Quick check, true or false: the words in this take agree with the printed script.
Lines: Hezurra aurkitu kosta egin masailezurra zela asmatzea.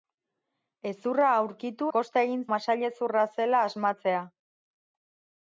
true